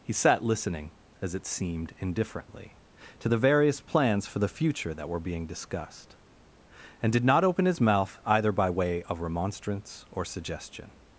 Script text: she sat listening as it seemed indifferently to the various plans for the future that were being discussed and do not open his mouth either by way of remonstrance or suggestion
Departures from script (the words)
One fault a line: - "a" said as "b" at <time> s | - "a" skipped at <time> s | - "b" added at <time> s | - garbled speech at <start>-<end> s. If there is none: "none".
- "she" said as "he" at 0.0 s
- "do" said as "did" at 7.1 s